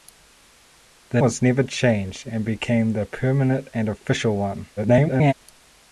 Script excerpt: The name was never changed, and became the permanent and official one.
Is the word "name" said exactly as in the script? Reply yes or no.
no